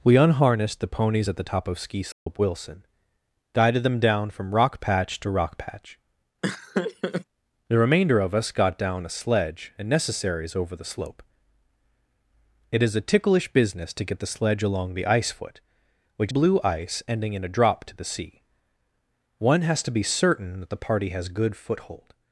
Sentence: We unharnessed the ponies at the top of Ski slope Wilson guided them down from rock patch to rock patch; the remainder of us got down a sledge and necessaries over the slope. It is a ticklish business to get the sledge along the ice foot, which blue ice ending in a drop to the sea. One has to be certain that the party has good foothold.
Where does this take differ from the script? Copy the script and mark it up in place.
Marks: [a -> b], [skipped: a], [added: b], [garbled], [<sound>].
We unharnessed the ponies at the top of Ski slope [dropout] Wilson guided them down from rock patch to rock patch; [laugh] the remainder of us got down a sledge and necessaries over the slope. It is a ticklish business to get the sledge along the ice foot, which blue ice ending in a drop to the sea. One has to be certain that the party has good foothold.